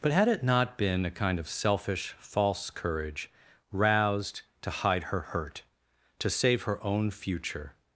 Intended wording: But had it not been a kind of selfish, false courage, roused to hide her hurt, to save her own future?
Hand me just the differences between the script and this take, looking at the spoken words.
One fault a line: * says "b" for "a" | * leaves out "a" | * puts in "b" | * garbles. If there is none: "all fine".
all fine